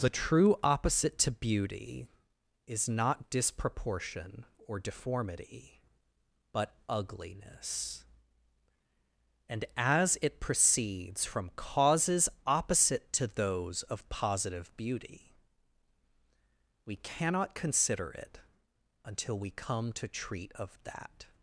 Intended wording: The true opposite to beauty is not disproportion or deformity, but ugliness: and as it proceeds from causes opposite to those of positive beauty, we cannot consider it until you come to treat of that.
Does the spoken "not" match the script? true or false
true